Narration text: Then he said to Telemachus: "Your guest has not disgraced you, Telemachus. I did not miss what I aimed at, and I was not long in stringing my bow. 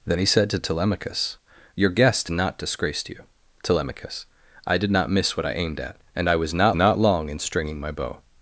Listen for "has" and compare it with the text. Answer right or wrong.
wrong